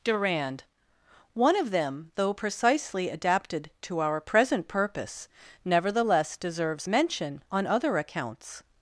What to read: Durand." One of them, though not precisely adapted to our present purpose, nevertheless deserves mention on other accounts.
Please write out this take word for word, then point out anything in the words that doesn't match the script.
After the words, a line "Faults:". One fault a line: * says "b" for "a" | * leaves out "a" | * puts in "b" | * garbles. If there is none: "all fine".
Durand." One of them, though precisely adapted to our present purpose, nevertheless deserves mention on other accounts.
Faults:
* leaves out "not"